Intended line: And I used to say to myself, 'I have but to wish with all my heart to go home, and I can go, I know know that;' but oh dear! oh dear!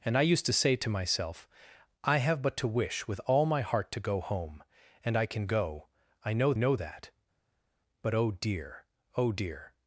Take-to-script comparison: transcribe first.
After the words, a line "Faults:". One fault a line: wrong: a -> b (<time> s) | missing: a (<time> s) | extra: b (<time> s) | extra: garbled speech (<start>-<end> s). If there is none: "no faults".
And I used to say to myself, 'I have but to wish with all my heart to go home, and I can go, I know know that;' but oh dear! oh dear!
Faults:
no faults